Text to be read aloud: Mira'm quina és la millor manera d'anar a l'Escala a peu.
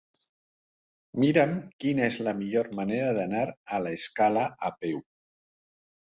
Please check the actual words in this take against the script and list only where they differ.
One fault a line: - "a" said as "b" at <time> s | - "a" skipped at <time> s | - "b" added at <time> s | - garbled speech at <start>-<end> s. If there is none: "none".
none